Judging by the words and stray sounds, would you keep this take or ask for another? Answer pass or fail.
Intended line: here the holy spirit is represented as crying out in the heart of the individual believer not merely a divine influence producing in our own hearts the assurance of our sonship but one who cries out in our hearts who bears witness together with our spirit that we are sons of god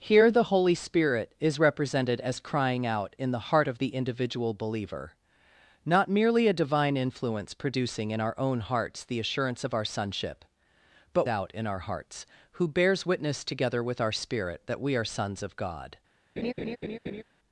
fail